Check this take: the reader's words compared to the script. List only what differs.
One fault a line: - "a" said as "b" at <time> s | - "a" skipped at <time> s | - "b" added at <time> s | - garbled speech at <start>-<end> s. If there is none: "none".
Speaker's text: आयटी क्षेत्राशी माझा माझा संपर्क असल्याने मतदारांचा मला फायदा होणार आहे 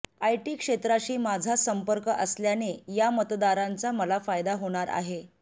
- "माझा" skipped at 1.6 s
- "या" added at 2.9 s